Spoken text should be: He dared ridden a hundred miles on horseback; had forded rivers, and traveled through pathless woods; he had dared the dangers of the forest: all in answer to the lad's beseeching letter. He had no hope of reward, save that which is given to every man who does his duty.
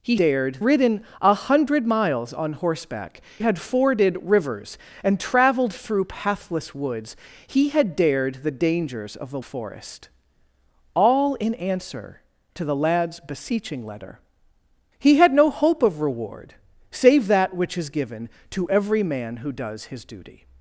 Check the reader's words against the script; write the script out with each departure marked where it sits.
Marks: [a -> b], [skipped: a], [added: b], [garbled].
He dared ridden a hundred miles on horseback; had forded rivers, and traveled through pathless woods; he had dared the dangers of the forest: all in answer to the lad's beseeching letter. He had no hope of reward, save that which is given to every man who does his duty.